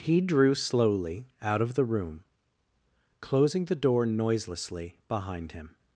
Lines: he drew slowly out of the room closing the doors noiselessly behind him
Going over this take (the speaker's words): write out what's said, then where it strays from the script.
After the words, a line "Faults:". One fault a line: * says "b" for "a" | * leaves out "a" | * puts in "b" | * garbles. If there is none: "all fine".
he drew slowly out of the room closing the door noiselessly behind him
Faults:
* says "door" for "doors"